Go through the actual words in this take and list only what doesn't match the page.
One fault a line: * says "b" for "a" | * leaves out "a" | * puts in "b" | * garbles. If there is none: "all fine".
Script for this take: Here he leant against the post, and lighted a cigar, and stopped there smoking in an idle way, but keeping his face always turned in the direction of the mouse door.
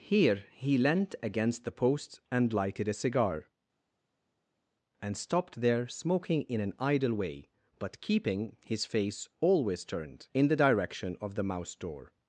all fine